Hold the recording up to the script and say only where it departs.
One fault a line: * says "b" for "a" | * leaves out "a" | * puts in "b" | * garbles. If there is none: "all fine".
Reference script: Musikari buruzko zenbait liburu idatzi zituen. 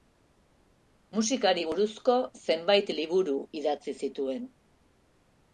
all fine